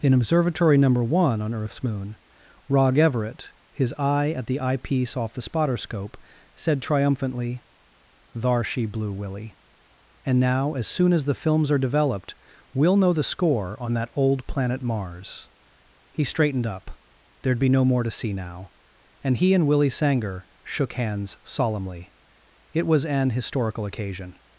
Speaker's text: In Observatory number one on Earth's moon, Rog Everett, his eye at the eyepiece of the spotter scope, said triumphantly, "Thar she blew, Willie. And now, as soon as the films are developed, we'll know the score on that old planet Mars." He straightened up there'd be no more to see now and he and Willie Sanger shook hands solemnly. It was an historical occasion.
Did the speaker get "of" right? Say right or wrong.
wrong